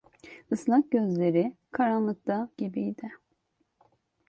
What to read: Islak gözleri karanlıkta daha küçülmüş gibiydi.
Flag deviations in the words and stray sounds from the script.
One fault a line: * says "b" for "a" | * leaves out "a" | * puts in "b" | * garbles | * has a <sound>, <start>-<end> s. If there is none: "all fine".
* leaves out "daha küçülmüş"